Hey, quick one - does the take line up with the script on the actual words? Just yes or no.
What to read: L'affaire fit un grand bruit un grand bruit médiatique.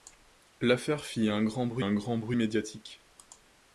yes